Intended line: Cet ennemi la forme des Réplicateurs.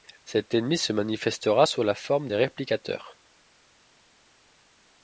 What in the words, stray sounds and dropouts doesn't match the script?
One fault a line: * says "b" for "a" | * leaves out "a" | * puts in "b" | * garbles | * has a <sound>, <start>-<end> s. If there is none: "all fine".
* puts in "se manifestera sous"